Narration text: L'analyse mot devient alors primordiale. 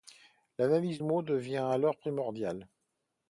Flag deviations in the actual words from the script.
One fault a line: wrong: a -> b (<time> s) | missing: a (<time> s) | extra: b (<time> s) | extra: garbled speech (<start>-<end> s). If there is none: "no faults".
no faults